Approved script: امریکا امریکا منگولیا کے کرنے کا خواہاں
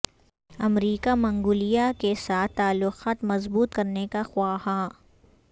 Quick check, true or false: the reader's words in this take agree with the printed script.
false